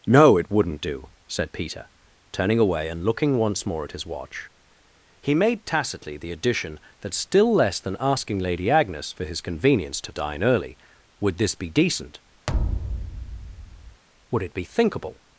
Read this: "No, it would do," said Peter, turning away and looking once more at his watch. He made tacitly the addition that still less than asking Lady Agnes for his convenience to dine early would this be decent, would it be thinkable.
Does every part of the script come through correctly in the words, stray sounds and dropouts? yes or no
no